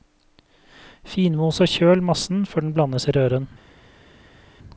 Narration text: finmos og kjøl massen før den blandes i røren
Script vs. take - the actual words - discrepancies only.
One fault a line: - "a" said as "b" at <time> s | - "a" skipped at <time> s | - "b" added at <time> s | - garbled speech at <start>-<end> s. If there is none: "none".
none